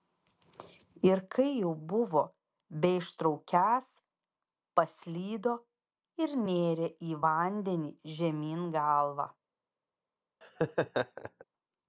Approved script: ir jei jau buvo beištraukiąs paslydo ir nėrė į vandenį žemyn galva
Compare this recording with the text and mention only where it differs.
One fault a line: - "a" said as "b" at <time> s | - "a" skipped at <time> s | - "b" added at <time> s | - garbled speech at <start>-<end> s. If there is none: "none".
- "jei" said as "kai" at 1.3 s